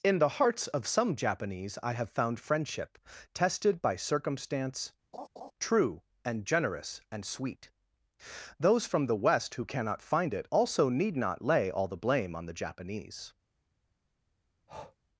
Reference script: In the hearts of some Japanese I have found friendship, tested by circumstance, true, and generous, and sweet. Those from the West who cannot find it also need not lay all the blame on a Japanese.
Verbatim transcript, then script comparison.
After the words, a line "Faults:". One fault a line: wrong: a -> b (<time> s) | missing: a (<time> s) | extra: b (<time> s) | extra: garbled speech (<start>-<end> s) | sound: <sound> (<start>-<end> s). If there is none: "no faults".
In the hearts of some Japanese I have found friendship, tested by circumstance, true, and generous, and sweet. Those from the West who cannot find it also need not lay all the blame on the Japanese.
Faults:
sound: laugh (5.1-5.5 s)
wrong: a -> the (12.5 s)
sound: breath (14.7-15.0 s)